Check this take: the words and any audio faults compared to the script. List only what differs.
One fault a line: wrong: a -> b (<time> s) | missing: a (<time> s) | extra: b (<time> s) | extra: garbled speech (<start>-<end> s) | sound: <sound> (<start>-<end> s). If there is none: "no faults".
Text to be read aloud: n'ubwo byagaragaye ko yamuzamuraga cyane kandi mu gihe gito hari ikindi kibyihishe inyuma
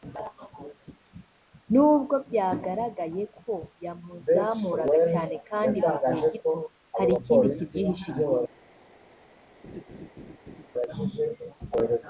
sound: laugh (9.6-10.7 s)